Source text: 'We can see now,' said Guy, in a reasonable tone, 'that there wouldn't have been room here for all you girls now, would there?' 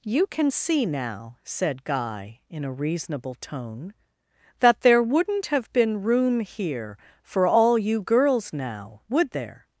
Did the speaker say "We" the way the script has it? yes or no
no